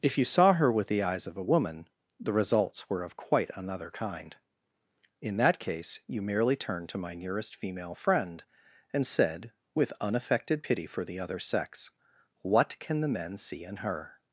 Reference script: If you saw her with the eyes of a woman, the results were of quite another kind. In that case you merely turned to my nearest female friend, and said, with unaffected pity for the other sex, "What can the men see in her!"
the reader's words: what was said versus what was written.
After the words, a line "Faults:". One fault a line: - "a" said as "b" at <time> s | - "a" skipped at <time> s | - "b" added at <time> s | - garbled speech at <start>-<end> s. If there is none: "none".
If you saw her with the eyes of a woman, the results were of quite another kind. In that case you merely turned to my nearest female friend, and said, with unaffected pity for the other sex, "What can the men see in her!"
Faults:
none